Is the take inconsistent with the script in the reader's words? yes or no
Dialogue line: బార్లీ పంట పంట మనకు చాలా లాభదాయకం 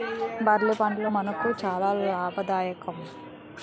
yes